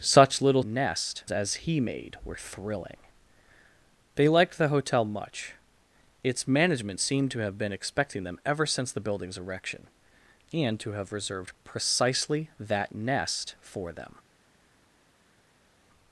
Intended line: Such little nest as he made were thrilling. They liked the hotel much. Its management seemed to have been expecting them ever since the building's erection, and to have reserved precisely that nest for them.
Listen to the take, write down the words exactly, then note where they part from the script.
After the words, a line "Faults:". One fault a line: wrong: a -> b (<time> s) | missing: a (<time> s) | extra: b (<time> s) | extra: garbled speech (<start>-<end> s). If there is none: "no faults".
Such little nest as he made were thrilling. They liked the hotel much. Its management seemed to have been expecting them ever since the building's erection, and to have reserved precisely that nest for them.
Faults:
no faults